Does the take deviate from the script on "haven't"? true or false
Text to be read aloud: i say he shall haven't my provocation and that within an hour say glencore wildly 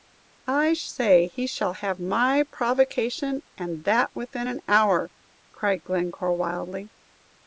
true